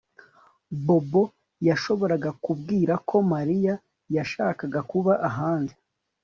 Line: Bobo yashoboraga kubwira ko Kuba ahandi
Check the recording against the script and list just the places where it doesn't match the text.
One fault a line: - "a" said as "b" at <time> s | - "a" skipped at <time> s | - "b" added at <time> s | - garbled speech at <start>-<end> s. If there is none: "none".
- "Mariya yashakaga" added at 3.3 s